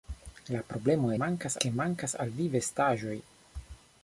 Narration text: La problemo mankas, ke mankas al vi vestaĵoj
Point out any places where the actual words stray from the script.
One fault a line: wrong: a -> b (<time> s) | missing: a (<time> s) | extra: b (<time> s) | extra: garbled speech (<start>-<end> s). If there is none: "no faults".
no faults